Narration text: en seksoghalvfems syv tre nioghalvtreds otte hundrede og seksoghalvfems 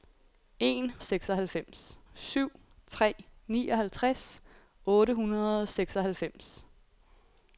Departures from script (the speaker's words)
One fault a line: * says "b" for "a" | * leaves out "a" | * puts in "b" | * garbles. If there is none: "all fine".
all fine